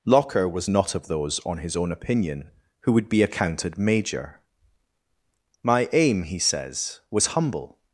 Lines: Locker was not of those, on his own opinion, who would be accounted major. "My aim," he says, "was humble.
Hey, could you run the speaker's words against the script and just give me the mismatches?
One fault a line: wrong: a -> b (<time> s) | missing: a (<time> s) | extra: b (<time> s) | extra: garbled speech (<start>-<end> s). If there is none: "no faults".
no faults